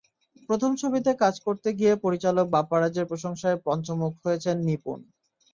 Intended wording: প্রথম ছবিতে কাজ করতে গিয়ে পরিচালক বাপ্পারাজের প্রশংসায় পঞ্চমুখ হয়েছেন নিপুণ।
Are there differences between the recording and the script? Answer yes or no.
no